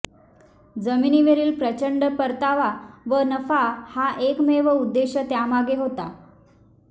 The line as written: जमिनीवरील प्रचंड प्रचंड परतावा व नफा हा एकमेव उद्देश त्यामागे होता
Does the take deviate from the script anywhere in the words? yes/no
yes